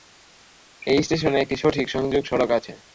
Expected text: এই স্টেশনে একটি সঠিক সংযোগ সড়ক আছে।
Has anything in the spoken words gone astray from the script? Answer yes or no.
no